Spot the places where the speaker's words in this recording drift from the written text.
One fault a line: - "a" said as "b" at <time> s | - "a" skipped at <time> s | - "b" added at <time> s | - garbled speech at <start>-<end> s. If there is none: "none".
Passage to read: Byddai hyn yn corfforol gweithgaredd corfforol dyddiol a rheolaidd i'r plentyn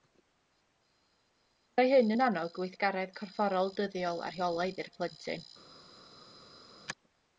- "corfforol" said as "annog" at 2.3 s